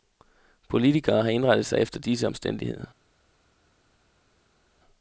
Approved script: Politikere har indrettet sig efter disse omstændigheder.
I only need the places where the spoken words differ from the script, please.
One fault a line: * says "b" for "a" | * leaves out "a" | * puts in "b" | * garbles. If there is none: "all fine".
all fine